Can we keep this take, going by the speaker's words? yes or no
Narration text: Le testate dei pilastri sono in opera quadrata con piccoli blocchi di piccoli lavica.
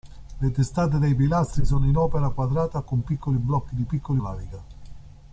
yes